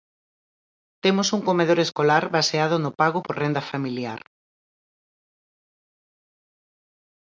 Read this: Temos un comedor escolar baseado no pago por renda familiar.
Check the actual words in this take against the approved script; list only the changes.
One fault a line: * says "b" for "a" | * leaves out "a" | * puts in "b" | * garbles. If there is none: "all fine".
all fine